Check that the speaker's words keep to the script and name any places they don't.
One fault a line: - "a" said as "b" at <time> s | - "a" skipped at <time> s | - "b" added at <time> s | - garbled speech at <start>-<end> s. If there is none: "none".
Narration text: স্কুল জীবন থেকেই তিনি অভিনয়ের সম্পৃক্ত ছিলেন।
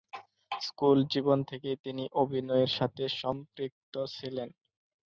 - "সাথে" added at 2.8 s